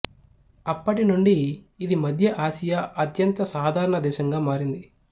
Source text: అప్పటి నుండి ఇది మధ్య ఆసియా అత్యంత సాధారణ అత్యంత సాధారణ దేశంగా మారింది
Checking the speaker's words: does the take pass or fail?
fail